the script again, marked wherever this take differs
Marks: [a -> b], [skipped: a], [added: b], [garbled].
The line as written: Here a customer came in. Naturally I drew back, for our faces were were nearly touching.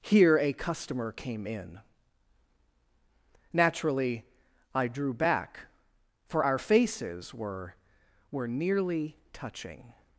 Here a customer came in. Naturally I drew back, for our faces were were nearly touching.